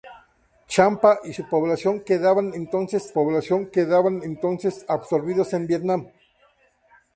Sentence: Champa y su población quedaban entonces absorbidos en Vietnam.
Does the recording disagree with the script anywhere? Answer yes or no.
yes